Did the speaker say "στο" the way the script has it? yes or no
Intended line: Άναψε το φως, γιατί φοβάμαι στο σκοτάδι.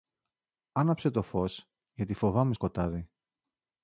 no